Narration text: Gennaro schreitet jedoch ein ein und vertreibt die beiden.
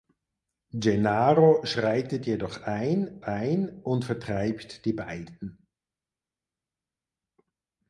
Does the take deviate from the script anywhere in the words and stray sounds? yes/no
no